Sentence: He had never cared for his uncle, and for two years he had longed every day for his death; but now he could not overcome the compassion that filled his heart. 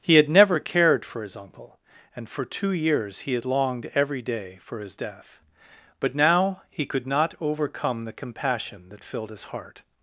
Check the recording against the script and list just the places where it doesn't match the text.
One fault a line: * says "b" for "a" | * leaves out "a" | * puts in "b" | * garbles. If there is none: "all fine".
all fine